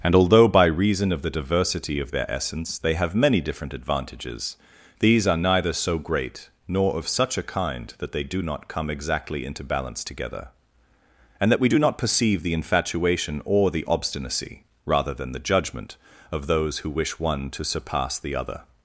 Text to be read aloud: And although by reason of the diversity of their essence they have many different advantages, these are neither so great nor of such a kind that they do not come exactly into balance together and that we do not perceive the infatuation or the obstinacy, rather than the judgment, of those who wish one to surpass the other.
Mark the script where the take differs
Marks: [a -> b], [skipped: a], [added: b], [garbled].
And although by reason of the diversity of their essence they have many different advantages, these are neither so great nor of such a kind that they do not come exactly into balance together and that we do not perceive the infatuation or the obstinacy, rather than the judgment, of those who wish one to surpass the other.